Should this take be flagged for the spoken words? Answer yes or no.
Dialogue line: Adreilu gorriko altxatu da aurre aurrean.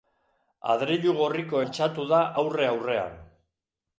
no